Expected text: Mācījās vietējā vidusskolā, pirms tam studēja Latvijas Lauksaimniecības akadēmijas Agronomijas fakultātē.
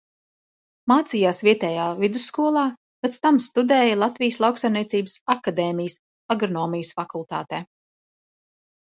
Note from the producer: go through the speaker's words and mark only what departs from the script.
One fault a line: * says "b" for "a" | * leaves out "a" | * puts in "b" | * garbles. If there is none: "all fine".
* says "pēc" for "pirms"